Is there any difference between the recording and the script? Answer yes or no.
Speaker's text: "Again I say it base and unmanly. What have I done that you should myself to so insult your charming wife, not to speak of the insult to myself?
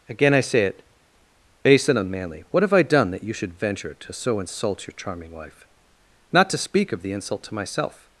yes